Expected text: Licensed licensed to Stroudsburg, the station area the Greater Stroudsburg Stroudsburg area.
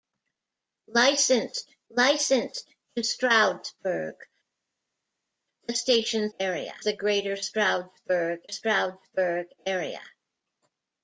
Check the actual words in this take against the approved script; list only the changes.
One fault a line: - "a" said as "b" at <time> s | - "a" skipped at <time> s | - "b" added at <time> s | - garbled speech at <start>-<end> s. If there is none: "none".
none